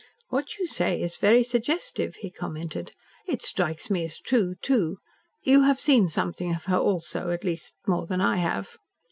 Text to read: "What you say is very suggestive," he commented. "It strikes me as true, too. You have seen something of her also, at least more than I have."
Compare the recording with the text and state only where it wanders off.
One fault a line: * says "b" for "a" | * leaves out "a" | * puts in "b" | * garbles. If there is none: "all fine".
all fine